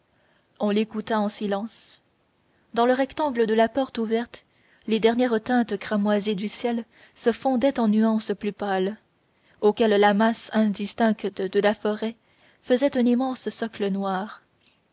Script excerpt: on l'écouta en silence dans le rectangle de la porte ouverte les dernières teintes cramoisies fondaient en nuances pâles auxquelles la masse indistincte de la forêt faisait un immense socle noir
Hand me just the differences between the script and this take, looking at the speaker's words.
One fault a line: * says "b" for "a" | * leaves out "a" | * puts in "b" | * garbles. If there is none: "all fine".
* puts in "du ciel se"
* puts in "plus"